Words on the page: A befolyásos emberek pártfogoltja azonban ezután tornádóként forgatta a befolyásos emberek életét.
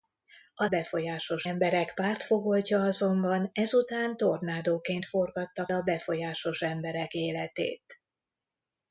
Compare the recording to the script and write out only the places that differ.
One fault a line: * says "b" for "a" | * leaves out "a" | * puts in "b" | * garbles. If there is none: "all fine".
all fine